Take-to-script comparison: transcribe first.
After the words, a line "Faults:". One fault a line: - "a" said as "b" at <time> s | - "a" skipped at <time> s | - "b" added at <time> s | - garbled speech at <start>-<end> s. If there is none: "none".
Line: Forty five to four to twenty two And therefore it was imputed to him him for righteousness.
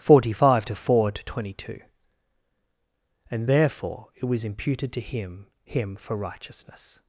Forty five to four to twenty two And therefore it was imputed to him him for righteousness.
Faults:
none